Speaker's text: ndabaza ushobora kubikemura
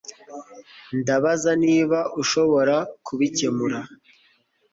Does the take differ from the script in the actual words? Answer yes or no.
yes